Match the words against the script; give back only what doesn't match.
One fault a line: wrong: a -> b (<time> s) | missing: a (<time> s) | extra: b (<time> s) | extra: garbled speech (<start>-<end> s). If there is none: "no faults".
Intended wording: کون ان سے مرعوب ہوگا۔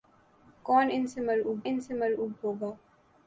extra: ان سے مرعوب (1.6 s)